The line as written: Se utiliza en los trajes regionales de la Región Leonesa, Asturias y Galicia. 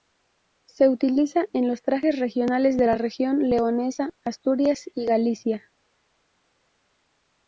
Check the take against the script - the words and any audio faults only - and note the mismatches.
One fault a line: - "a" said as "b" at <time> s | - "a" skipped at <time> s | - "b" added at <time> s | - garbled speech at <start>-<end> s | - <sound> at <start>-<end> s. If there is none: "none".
none